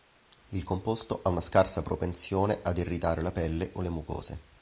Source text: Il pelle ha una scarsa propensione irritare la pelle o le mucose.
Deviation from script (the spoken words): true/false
true